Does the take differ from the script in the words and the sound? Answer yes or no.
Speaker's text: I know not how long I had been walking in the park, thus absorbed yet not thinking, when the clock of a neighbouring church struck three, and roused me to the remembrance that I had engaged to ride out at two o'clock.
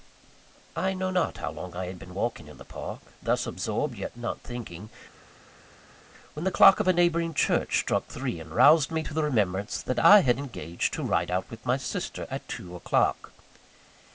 yes